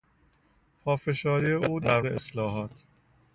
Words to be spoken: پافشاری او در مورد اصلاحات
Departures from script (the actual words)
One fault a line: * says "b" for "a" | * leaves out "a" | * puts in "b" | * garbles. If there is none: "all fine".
* leaves out "مورد"